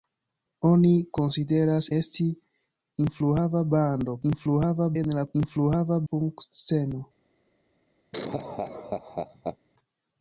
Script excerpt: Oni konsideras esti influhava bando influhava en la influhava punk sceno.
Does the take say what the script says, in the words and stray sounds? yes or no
no